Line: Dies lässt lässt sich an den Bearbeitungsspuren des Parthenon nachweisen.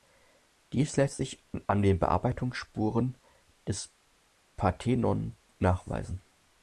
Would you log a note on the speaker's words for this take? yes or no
yes